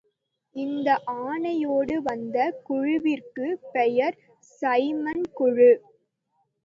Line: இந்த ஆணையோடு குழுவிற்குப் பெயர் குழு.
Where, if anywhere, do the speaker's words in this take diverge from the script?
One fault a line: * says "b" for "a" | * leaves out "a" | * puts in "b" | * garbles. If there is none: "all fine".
* puts in "வந்த"
* puts in "சைமன்"